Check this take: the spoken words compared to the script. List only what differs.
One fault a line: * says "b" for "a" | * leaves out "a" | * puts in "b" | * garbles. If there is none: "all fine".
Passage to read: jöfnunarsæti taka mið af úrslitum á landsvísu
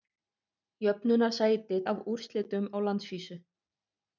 * leaves out "taka mið"